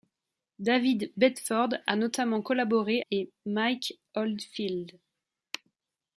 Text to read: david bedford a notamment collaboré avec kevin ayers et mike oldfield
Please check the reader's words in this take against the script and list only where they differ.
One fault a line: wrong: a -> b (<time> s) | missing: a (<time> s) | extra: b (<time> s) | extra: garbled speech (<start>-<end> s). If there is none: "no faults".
missing: avec kevin ayers (3.0 s)